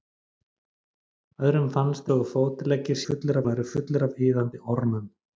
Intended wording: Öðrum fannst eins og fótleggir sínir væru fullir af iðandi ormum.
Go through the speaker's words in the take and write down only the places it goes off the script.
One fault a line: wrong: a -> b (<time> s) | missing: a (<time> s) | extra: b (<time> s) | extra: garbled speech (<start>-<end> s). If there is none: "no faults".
missing: eins (2.1 s)
wrong: sínir -> fullir (3.1 s)